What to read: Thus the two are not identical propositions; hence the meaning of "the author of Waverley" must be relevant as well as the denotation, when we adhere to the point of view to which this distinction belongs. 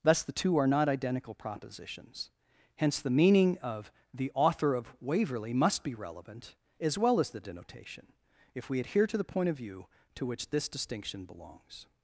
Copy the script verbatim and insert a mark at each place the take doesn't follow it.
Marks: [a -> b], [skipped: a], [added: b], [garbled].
Thus the two are not identical propositions; hence the meaning of "the author of Waverley" must be relevant as well as the denotation, [when -> if] we adhere to the point of view to which this distinction belongs.